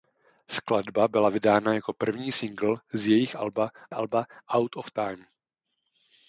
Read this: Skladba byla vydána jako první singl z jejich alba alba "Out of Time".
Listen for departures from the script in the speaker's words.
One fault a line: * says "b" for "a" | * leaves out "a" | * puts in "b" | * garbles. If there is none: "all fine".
all fine